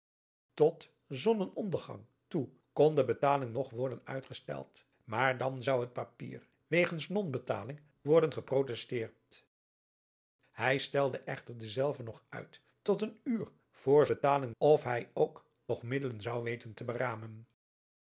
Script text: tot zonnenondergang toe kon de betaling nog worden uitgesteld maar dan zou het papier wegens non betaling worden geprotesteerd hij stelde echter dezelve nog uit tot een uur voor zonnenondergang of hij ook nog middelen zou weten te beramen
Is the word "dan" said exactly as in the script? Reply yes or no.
yes